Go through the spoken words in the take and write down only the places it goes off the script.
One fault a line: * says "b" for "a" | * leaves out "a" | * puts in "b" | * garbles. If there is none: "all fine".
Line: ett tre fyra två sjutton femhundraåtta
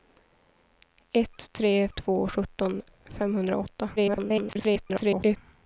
* leaves out "fyra"
* garbles